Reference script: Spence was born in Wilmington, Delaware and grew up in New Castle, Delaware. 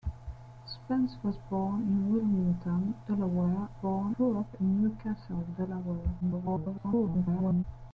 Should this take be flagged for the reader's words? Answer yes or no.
yes